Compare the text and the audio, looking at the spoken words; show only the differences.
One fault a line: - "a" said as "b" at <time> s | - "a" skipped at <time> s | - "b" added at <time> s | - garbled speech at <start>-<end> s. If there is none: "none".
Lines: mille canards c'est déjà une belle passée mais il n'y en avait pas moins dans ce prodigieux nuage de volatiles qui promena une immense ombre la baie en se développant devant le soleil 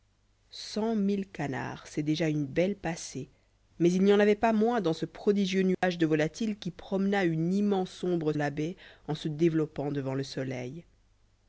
none